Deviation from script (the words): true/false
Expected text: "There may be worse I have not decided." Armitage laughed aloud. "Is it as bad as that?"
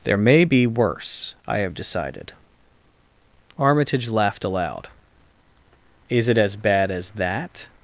true